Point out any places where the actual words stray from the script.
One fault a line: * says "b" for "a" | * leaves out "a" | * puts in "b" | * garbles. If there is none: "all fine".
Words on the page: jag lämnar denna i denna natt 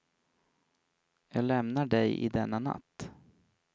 * says "dig" for "denna"